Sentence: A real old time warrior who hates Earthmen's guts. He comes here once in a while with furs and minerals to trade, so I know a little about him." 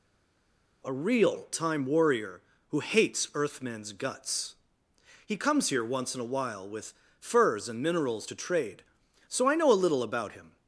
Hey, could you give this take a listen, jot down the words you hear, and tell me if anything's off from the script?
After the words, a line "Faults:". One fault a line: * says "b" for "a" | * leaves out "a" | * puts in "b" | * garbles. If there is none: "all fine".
A real time warrior who hates Earthmen's guts. He comes here once in a while with furs and minerals to trade, so I know a little about him."
Faults:
* leaves out "old"